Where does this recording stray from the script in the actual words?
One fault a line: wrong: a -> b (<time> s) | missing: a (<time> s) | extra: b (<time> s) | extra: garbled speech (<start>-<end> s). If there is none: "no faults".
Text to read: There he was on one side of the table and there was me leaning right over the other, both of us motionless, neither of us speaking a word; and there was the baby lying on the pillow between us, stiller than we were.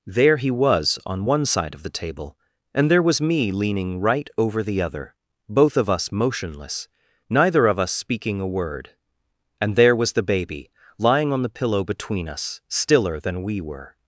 no faults